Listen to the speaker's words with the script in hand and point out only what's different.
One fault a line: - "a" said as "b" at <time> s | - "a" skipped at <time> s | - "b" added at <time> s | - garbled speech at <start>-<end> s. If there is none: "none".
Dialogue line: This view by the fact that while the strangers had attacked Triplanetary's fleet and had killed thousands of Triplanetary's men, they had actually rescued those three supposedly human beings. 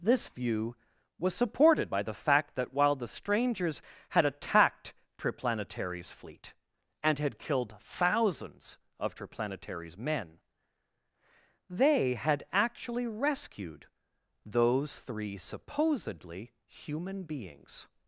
- "was supported" added at 1.2 s